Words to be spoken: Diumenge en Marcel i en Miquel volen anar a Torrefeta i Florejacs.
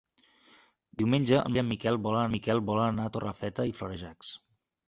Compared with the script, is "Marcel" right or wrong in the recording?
wrong